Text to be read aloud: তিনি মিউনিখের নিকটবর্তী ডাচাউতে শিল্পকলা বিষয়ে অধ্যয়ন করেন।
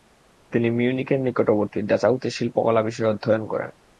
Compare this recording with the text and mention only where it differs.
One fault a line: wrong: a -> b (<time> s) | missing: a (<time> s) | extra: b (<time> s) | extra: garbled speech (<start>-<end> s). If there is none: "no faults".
no faults